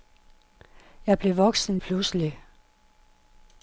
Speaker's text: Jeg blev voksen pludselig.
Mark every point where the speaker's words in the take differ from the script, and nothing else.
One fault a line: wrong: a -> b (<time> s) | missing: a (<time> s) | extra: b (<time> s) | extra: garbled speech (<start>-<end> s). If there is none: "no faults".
no faults